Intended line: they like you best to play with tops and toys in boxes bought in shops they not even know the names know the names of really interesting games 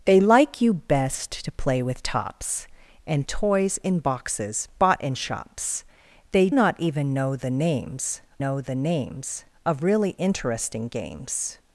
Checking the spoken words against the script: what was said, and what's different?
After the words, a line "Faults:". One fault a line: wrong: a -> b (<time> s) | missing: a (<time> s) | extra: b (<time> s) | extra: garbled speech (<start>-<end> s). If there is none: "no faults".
they like you best to play with tops and toys in boxes bought in shops they not even know the names know the names of really interesting games
Faults:
no faults